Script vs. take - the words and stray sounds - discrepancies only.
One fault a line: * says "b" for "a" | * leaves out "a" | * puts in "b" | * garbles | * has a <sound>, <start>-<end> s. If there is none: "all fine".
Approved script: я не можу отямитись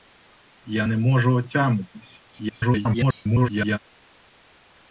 * garbles